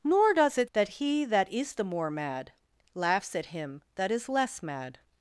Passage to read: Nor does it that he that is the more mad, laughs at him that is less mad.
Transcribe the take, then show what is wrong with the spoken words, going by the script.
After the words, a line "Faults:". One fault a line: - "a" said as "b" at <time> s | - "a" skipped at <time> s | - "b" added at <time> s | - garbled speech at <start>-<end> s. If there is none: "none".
Nor does it that he that is the more mad, laughs at him that is less mad.
Faults:
none